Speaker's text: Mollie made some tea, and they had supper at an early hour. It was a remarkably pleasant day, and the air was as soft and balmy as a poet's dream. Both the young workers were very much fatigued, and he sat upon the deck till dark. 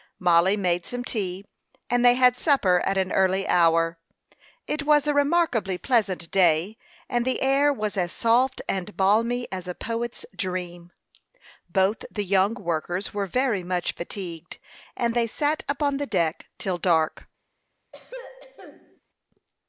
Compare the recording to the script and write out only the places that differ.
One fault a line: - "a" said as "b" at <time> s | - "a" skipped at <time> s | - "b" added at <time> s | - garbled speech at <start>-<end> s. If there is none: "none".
- "he" said as "they" at 15.1 s